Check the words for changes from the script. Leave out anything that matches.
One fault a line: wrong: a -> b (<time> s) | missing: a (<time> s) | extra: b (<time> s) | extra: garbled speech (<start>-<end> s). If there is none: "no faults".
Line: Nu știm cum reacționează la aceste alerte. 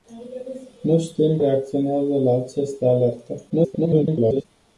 missing: cum (1.4 s)
extra: garbled speech (3.5-4.4 s)